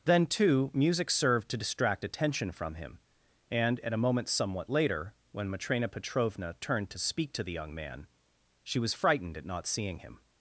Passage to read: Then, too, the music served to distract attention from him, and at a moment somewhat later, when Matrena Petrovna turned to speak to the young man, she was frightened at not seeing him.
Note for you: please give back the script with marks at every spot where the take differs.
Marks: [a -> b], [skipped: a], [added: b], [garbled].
Then, too, [skipped: the] music served to distract attention from him, and at a moment somewhat later, when Matrena Petrovna turned to speak to the young man, she was frightened at not seeing him.